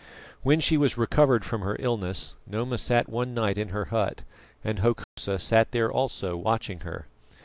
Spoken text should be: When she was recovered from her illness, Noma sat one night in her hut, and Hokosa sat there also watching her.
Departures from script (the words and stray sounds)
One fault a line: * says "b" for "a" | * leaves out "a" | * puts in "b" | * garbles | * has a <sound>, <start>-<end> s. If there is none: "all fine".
* has a dropout, 5.0-5.2 s